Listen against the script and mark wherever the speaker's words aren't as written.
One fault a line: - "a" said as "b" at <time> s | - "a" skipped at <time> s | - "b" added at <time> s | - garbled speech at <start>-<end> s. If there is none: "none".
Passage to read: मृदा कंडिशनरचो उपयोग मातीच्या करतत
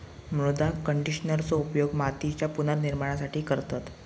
- "पुनर्निर्माणासाठी" added at 2.5 s